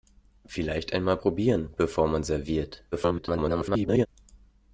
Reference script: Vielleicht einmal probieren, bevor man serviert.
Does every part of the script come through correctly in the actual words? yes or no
no